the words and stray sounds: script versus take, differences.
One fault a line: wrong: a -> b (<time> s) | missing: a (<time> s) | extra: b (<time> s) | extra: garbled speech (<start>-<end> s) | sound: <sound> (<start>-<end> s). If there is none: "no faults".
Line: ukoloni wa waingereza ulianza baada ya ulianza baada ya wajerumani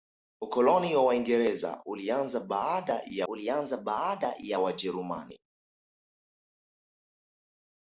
no faults